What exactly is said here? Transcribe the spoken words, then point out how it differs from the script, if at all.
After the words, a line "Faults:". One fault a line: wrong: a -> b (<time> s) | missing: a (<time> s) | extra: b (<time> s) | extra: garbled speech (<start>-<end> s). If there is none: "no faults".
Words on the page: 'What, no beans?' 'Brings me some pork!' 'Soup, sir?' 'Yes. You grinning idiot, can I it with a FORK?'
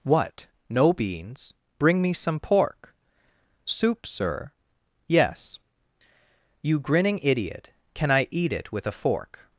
'What, no beans?' 'Bring me some pork!' 'Soup, sir?' 'Yes. You grinning idiot, can I eat it with a FORK?'
Faults:
wrong: Brings -> Bring (1.8 s)
extra: eat (8.3 s)